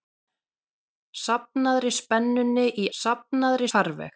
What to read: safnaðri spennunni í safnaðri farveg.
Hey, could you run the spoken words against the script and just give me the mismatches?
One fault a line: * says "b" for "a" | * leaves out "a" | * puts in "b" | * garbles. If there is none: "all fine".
all fine